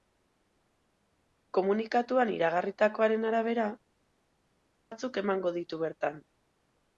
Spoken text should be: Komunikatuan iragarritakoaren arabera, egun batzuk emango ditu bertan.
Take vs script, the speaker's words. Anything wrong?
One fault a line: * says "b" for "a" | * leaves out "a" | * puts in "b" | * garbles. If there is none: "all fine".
* leaves out "egun"